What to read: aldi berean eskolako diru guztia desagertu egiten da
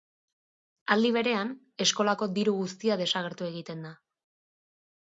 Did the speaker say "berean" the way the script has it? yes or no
yes